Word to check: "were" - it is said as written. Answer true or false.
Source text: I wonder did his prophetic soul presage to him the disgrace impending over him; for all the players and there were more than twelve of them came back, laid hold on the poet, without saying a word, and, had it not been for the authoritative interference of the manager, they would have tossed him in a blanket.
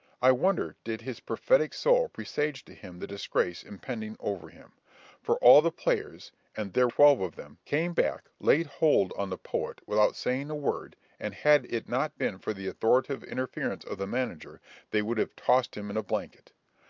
false